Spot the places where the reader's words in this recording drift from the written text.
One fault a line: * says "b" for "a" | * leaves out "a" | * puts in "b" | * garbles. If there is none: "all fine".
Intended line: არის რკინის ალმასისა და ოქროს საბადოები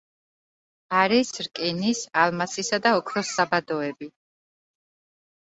all fine